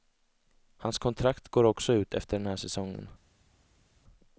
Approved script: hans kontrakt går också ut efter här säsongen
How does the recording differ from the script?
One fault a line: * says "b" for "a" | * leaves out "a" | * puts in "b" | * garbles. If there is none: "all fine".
* puts in "den"